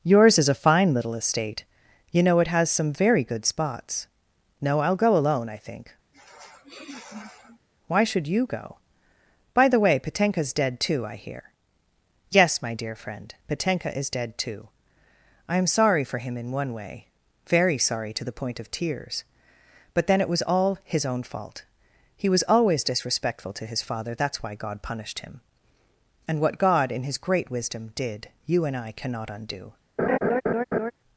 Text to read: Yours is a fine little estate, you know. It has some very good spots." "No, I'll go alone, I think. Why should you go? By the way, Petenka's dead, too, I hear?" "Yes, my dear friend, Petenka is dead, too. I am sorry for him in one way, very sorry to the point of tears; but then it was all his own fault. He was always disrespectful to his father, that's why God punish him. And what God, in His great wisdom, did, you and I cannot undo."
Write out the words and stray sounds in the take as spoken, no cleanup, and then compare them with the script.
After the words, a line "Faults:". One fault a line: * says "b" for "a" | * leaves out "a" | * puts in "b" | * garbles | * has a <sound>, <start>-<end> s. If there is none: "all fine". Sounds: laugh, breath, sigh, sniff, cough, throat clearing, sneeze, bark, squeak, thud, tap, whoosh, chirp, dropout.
Yours is a fine little estate, you know. It has some very good spots." "No, I'll go alone, I think. Why should you go? By the way, Petenka's dead, too, I hear?" "Yes, my dear friend, Petenka is dead, too. I am sorry for him in one way, very sorry to the point of tears; but then it was all his own fault. He was always disrespectful to his father, that's why God punished him. And what God, in His great wisdom, did, you and I cannot undo."
Faults:
* has a sniff, 6.1-7.7 s
* says "punished" for "punish"
* has a laugh, 30.0-30.9 s